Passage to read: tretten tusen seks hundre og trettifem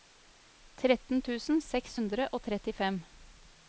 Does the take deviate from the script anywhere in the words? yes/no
no